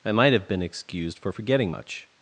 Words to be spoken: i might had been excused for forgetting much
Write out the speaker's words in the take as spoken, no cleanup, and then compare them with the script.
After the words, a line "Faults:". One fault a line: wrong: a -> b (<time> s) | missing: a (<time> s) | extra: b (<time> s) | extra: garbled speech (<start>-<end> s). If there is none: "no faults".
i might have been excused for forgetting much
Faults:
wrong: had -> have (0.3 s)